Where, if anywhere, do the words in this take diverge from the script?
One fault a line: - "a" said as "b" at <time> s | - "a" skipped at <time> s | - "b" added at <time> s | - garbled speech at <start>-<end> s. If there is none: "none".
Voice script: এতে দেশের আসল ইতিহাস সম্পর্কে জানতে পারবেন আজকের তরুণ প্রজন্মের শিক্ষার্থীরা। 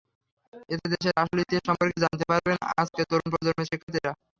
none